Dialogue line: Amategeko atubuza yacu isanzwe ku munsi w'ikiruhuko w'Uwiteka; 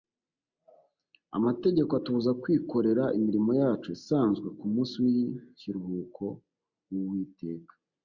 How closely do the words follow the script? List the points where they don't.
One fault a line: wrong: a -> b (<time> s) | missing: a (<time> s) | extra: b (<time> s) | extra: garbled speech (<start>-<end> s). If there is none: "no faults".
extra: kwikorera imirimo (2.4 s)